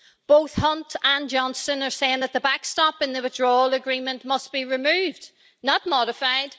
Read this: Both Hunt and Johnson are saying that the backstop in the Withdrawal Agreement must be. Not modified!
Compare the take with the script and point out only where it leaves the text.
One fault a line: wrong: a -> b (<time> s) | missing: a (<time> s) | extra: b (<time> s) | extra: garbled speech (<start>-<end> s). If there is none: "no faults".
extra: removed (4.6 s)